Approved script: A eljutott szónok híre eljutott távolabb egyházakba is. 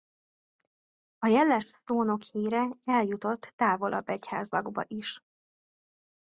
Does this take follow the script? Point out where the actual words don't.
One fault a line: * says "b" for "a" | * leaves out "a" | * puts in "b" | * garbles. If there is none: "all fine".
* says "jeles" for "eljutott"